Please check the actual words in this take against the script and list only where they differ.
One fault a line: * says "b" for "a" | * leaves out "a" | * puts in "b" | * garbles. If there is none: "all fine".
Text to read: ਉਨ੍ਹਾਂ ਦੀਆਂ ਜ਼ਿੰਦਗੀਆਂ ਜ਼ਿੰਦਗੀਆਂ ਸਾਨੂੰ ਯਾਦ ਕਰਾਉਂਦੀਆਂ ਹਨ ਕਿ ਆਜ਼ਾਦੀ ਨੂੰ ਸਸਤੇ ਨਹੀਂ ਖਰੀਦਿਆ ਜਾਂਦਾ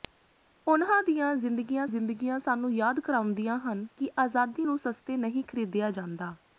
all fine